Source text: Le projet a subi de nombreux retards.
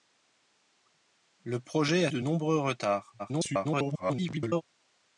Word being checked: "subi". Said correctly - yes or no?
no